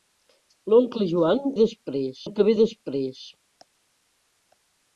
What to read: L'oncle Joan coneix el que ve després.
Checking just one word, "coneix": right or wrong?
wrong